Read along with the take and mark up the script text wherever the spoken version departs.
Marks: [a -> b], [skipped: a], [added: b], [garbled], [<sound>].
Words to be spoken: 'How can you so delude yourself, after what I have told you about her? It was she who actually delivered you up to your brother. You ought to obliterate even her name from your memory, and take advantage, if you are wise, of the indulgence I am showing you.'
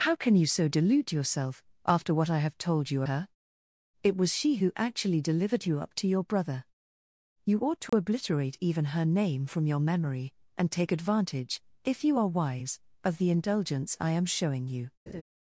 'How can you so delude yourself, after what I have told you [skipped: about] her? It was she who actually delivered you up to your brother. You ought to [dropout] obliterate even her name from your memory, and take advantage, if you are wise, of the indulgence I am showing you.' [laugh]